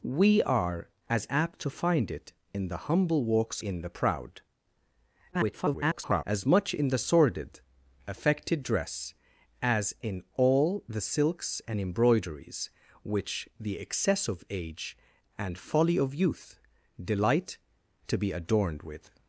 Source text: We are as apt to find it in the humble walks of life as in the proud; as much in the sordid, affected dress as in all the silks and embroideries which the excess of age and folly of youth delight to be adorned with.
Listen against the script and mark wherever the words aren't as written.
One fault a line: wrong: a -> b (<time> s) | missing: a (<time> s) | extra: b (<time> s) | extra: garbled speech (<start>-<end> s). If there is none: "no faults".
missing: of life as (3.6 s)
extra: garbled speech (5.3-6.2 s)